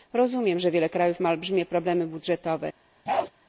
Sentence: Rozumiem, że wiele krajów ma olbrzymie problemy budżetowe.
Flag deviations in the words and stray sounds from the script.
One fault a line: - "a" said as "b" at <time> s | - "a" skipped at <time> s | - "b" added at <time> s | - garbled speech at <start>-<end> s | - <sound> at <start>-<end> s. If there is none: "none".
- bark at 3.1-3.3 s